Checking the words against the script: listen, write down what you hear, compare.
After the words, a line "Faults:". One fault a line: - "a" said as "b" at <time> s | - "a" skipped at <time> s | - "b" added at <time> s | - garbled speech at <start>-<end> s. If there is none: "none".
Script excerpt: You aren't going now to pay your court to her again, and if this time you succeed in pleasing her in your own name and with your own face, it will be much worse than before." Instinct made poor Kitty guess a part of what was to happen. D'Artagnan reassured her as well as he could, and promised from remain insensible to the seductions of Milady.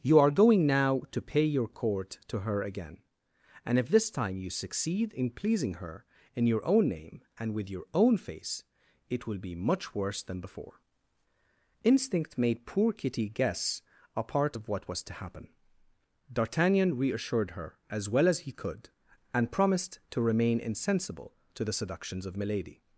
You are going now to pay your court to her again, and if this time you succeed in pleasing her in your own name and with your own face, it will be much worse than before." Instinct made poor Kitty guess a part of what was to happen. D'Artagnan reassured her as well as he could, and promised to remain insensible to the seductions of Milady.
Faults:
- "aren't" said as "are" at 0.2 s
- "from" said as "to" at 20.1 s